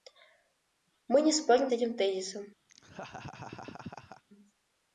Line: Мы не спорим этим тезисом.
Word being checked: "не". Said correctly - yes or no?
yes